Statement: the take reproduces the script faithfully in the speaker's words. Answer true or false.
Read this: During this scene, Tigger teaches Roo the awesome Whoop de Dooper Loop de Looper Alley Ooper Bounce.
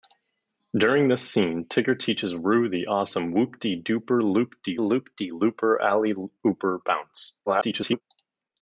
false